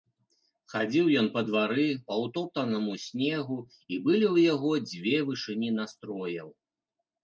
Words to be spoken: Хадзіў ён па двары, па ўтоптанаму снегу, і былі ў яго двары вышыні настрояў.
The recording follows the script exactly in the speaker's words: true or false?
false